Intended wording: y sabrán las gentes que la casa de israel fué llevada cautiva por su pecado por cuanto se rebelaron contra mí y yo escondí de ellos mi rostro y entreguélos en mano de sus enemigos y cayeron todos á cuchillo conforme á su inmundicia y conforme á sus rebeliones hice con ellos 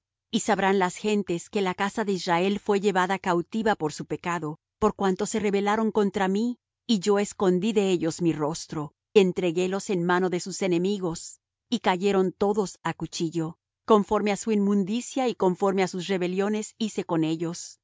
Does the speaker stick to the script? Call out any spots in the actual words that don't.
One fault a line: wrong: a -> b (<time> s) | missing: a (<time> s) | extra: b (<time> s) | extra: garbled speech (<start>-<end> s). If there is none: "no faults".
missing: y (8.9 s)